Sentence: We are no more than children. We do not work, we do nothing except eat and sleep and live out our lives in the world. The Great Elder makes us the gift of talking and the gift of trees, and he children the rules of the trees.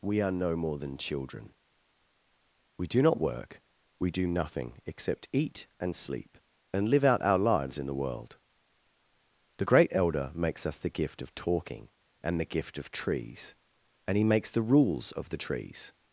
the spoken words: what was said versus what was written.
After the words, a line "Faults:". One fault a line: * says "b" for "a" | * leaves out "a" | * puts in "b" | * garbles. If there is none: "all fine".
We are no more than children. We do not work, we do nothing except eat and sleep and live out our lives in the world. The Great Elder makes us the gift of talking and the gift of trees, and he makes the rules of the trees.
Faults:
* says "makes" for "children"